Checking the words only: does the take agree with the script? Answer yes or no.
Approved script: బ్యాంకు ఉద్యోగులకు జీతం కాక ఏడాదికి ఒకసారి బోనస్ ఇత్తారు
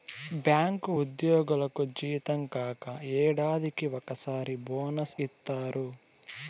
yes